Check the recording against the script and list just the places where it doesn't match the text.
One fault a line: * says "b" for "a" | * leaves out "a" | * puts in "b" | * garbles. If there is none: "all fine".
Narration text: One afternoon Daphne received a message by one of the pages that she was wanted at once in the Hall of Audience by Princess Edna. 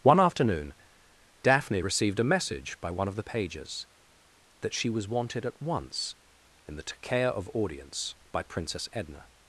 * says "Takea" for "Hall"